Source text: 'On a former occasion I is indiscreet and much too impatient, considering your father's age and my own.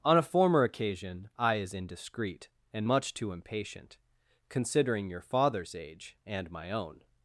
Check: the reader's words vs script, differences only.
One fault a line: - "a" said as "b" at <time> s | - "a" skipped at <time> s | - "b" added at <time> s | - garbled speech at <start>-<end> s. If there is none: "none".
none